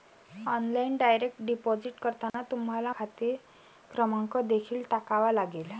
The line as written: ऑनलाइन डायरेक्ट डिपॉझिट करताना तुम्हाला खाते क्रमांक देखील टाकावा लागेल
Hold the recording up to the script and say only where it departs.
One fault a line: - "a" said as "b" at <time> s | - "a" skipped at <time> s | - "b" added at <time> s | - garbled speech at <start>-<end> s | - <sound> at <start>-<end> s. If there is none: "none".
- dropout at 2.3-2.3 s